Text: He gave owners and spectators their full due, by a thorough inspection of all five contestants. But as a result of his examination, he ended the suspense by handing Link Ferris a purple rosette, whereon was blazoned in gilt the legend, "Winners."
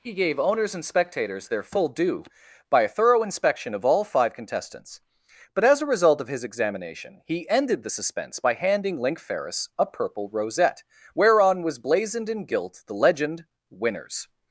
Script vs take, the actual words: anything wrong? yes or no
no